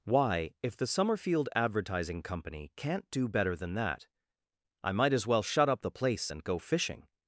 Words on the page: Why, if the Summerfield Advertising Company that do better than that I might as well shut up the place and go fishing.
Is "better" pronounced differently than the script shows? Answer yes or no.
no